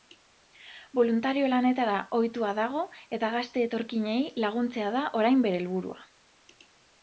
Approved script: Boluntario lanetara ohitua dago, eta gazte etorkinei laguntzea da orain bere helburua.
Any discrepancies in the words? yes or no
no